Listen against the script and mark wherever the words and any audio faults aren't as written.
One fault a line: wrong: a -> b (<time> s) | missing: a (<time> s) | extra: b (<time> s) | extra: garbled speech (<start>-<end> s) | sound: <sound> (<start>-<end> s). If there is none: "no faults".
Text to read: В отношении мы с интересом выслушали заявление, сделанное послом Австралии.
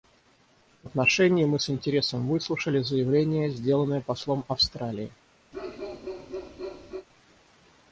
sound: bark (5.5-7.1 s)